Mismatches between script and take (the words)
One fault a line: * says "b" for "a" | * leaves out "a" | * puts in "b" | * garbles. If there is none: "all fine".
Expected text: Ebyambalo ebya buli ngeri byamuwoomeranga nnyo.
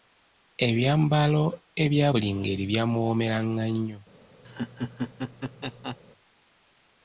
all fine